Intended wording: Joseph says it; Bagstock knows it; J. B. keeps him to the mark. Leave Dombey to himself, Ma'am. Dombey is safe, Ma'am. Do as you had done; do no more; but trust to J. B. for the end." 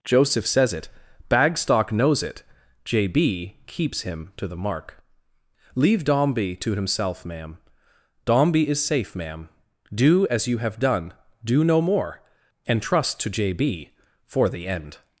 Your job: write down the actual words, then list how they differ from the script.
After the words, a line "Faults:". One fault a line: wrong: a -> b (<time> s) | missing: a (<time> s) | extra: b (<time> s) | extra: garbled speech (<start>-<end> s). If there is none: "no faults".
Joseph says it; Bagstock knows it; J. B. keeps him to the mark. Leave Dombey to himself, Ma'am. Dombey is safe, Ma'am. Do as you have done; do no more; and trust to J. B. for the end."
Faults:
wrong: had -> have (10.6 s)
wrong: but -> and (12.7 s)